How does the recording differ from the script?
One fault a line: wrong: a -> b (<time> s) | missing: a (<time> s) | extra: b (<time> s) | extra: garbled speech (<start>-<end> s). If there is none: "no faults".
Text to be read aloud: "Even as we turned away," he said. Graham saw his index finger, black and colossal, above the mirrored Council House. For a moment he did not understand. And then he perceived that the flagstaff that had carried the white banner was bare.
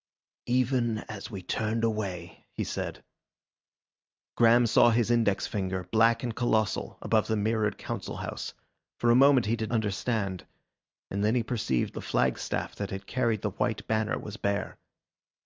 missing: not (9.7 s)
missing: that (11.9 s)